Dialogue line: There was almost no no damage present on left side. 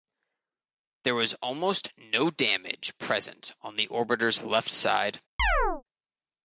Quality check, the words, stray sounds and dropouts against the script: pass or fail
fail